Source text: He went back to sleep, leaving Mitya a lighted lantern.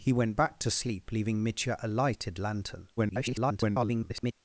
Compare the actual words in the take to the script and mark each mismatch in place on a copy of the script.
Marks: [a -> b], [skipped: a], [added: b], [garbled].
He went back to sleep, leaving Mitya a lighted lantern. [garbled]